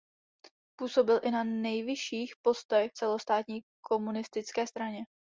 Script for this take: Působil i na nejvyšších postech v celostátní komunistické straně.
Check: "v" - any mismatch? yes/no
yes